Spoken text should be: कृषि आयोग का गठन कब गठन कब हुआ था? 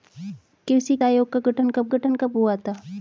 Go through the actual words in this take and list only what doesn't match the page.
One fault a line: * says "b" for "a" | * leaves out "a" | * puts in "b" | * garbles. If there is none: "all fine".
all fine